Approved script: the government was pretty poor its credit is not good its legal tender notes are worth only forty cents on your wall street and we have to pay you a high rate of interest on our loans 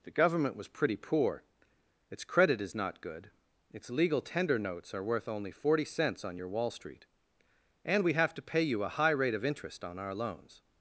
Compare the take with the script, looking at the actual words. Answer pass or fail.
pass